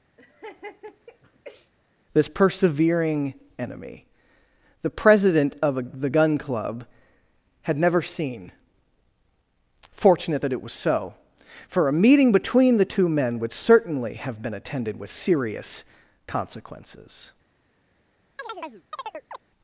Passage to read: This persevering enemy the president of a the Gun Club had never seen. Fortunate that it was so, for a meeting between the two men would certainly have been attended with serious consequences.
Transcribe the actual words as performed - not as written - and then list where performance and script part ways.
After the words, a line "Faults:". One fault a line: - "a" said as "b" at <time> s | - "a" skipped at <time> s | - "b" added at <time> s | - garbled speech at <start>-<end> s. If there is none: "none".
This persevering enemy the president of a the Gun Club had never seen. Fortunate that it was so, for a meeting between the two men would certainly have been attended with serious consequences.
Faults:
none